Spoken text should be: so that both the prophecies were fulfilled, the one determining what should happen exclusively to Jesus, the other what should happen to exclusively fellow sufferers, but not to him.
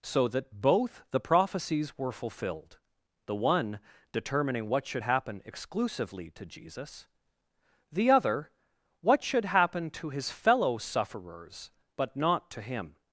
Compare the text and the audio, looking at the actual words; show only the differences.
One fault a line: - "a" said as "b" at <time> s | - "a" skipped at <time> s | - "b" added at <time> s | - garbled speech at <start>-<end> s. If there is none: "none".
- "exclusively" said as "his" at 10.1 s